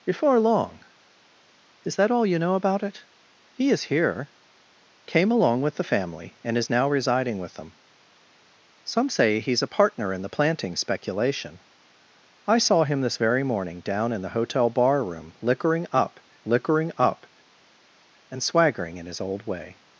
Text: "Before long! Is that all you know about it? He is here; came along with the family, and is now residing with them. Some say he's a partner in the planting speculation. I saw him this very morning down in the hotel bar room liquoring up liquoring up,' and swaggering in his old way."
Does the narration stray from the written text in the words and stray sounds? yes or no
no